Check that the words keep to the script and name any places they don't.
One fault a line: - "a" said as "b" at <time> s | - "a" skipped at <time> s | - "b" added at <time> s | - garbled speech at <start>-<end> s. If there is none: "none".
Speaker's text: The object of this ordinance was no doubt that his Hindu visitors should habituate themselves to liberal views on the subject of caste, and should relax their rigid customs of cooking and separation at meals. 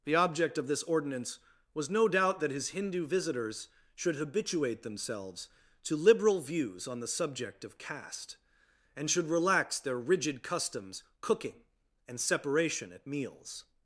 - "of" skipped at 11.0 s